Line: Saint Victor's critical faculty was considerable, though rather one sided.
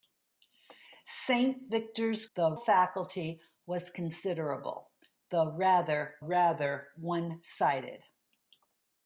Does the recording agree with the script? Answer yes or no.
no